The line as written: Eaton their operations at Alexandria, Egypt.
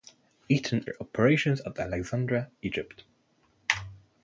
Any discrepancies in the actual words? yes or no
no